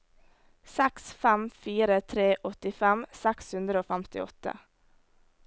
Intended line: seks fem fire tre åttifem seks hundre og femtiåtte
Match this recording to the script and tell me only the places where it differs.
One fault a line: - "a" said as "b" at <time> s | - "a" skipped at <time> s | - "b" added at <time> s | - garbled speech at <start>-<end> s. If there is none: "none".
none